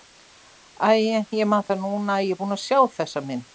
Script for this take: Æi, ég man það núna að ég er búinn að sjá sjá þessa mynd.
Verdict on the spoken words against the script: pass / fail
fail